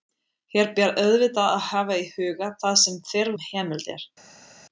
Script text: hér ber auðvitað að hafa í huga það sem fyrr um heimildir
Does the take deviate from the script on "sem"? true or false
false